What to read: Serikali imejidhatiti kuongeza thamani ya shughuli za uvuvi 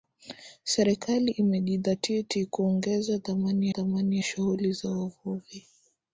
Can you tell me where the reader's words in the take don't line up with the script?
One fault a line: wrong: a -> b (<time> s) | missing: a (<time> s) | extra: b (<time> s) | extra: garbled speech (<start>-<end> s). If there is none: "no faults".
extra: thamani (3.7 s)